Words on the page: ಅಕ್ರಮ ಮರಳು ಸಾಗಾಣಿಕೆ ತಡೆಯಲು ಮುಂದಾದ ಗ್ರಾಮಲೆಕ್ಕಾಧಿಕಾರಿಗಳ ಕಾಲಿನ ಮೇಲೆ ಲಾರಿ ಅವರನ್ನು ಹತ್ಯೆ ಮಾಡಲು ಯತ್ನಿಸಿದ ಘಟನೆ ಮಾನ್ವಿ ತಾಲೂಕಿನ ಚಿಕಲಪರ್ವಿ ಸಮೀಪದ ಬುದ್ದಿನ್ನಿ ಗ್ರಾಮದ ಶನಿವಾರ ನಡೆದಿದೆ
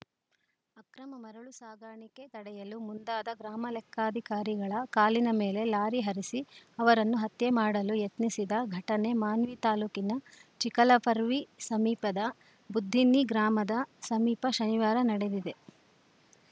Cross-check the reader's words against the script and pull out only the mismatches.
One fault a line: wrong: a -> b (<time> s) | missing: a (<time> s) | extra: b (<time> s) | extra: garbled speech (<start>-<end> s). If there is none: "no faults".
extra: ಹರಿಸಿ (6.0 s)
extra: ಸಮೀಪ (14.0 s)